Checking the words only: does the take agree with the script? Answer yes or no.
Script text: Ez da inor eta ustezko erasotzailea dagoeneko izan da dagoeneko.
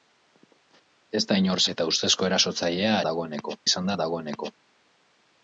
yes